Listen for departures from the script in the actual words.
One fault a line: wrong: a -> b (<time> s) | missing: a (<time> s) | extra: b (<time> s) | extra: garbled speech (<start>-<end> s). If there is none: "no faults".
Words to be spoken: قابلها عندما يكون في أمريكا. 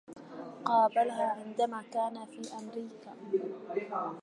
wrong: يكون -> كان (1.9 s)